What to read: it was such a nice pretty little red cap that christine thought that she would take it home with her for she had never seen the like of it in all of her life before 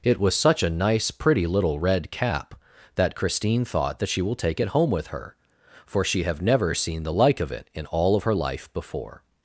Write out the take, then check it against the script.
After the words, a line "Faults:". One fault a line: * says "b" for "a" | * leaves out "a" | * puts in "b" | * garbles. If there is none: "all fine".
it was such a nice pretty little red cap that christine thought that she will take it home with her for she have never seen the like of it in all of her life before
Faults:
* says "will" for "would"
* says "have" for "had"